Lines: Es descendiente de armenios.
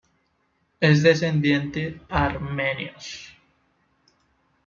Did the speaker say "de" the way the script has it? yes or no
no